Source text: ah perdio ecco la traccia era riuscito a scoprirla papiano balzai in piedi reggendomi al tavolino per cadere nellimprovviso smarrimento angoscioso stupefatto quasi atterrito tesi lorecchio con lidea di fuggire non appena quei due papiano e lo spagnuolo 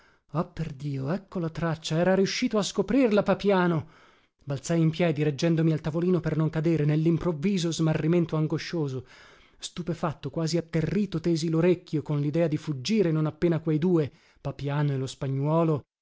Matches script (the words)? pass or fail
fail